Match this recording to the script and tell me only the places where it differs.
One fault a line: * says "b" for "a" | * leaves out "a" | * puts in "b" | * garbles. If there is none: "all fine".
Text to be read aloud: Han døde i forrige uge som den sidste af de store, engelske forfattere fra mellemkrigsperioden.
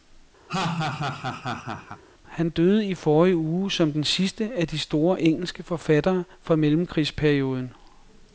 all fine